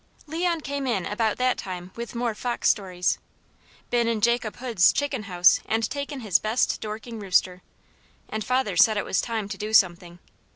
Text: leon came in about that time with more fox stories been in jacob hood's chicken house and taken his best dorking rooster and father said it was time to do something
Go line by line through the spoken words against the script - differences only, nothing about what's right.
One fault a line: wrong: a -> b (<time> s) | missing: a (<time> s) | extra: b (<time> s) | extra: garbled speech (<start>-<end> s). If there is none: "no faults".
no faults